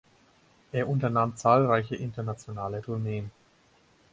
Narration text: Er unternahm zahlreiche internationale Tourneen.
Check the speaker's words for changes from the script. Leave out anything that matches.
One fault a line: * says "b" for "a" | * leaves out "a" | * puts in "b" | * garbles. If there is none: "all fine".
all fine